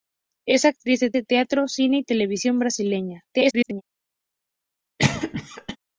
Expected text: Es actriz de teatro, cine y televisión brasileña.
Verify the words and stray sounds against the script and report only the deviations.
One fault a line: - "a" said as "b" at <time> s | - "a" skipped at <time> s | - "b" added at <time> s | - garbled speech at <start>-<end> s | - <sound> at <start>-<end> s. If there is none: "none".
- "de" added at 1.1 s
- garbled speech at 3.3-3.8 s
- cough at 5.0-5.8 s